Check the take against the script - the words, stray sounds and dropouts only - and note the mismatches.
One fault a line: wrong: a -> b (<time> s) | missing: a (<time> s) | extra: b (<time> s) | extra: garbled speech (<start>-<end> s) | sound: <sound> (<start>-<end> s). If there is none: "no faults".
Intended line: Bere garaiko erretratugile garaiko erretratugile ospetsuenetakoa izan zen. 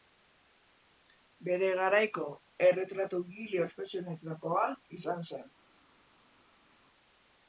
missing: garaiko erretratugile (3.6 s)